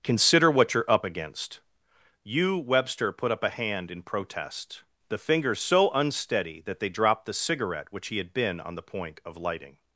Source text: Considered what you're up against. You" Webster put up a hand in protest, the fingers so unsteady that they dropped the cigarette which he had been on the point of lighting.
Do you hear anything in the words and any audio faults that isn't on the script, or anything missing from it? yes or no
yes